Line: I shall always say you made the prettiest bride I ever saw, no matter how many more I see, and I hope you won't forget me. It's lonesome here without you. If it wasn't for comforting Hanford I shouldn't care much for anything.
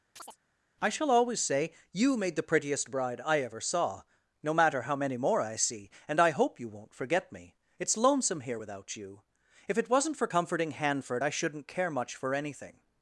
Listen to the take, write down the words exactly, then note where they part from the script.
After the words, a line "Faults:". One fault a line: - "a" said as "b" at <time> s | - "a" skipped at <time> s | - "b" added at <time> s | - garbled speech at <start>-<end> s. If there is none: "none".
I shall always say you made the prettiest bride I ever saw, no matter how many more I see, and I hope you won't forget me. It's lonesome here without you. If it wasn't for comforting Hanford I shouldn't care much for anything.
Faults:
none